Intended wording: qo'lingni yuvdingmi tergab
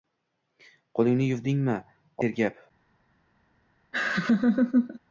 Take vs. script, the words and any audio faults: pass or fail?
fail